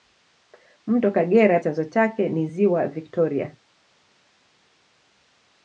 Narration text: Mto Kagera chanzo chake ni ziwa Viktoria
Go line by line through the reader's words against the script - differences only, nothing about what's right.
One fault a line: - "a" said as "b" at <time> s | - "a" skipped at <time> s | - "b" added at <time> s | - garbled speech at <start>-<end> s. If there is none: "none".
none